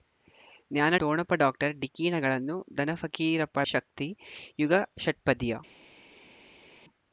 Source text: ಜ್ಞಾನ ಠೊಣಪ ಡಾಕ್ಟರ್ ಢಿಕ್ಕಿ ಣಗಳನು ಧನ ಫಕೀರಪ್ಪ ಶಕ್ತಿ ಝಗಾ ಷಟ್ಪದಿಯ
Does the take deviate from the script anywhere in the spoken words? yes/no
no